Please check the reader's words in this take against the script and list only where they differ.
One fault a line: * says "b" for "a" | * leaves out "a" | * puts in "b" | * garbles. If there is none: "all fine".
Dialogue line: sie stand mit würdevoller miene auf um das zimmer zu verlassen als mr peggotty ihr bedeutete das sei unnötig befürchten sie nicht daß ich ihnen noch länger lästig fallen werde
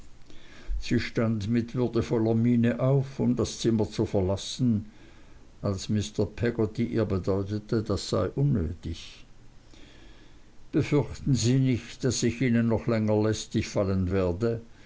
all fine